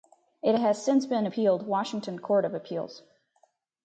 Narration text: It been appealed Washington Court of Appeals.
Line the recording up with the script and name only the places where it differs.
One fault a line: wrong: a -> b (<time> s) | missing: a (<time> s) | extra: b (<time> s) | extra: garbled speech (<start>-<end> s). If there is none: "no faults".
extra: has since (0.6 s)